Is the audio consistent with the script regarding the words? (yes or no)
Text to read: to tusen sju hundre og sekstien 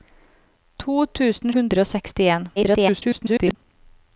no